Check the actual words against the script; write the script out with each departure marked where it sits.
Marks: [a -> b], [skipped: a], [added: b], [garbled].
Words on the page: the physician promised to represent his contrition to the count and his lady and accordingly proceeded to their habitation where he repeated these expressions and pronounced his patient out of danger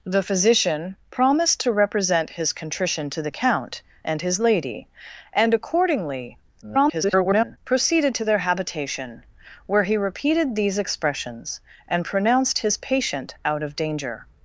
the physician promised to represent his contrition to the count and his lady and accordingly [garbled] proceeded to their habitation where he repeated these expressions and pronounced his patient out of danger